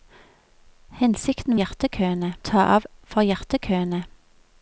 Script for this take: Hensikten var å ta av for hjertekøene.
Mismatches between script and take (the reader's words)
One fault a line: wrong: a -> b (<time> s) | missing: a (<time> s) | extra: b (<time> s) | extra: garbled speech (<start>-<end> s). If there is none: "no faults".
wrong: var -> hjertekøene (1.6 s)